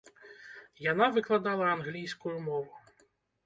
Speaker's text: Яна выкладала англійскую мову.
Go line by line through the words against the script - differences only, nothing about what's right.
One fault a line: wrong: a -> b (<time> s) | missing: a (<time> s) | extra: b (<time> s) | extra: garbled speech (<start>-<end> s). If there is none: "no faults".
no faults